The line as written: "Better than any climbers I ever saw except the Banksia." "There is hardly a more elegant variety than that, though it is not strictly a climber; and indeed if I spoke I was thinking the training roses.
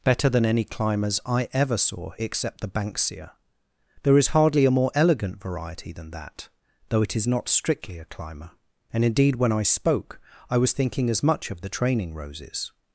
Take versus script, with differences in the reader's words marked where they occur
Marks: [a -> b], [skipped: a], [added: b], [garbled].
"Better than any climbers I ever saw except the Banksia." "There is hardly a more elegant variety than that, though it is not strictly a climber; and indeed [if -> when] I spoke I was thinking [added: as much of] the training roses.